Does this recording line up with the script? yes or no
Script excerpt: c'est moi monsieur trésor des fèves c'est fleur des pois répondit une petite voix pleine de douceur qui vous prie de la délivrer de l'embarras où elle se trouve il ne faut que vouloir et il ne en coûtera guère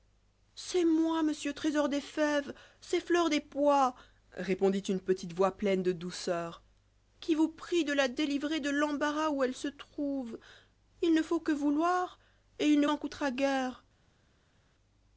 yes